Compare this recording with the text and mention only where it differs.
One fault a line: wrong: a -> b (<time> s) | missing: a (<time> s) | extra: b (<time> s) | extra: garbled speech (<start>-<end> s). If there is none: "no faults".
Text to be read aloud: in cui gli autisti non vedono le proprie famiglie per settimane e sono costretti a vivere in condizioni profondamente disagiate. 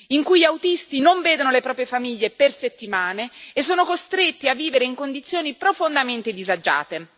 no faults